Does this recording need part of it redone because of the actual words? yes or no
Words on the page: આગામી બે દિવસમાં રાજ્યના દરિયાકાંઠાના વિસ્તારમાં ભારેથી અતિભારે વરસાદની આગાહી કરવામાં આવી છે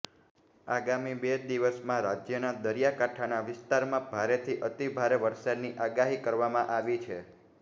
no